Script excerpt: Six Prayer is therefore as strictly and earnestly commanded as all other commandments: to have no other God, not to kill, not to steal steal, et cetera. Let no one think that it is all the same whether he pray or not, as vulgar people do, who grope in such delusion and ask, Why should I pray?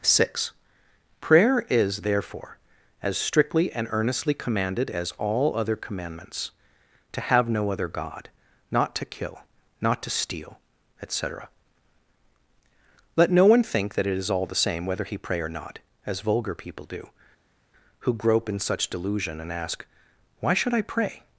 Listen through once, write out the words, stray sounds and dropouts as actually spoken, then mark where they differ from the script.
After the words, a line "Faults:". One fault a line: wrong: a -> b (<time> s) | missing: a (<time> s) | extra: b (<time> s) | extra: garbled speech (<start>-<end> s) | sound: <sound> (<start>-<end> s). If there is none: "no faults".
Six Prayer is therefore as strictly and earnestly commanded as all other commandments: to have no other God, not to kill, not to steal, et cetera. Let no one think that it is all the same whether he pray or not, as vulgar people do, who grope in such delusion and ask, Why should I pray?
Faults:
missing: steal (10.6 s)